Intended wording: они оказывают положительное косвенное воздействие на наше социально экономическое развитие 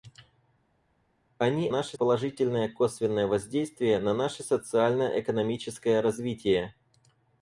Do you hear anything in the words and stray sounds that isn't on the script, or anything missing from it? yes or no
yes